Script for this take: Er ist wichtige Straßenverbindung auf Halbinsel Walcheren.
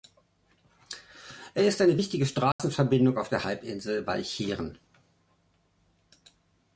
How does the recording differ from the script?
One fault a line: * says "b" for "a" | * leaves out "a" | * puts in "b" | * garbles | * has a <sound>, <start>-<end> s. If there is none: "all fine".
* puts in "eine"
* has a dropout, 2.5-2.6 s
* puts in "der"